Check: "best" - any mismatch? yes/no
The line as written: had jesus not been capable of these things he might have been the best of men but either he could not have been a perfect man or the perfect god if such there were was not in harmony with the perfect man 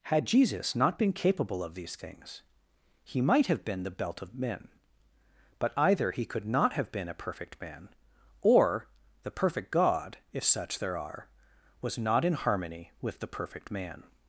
yes